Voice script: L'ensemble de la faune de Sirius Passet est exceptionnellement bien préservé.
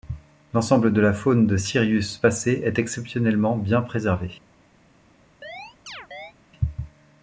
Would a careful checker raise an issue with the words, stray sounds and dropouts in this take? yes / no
yes